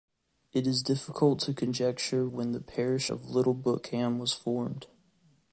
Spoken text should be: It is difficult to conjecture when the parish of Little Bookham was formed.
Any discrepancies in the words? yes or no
no